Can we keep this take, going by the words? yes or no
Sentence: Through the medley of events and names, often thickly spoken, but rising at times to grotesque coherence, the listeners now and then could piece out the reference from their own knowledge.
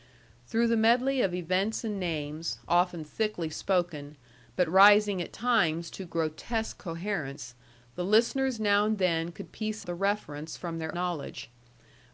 no